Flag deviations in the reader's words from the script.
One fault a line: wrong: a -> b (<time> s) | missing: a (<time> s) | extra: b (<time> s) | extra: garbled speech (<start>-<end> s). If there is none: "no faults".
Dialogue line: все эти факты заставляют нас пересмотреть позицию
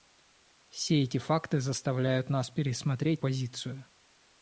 no faults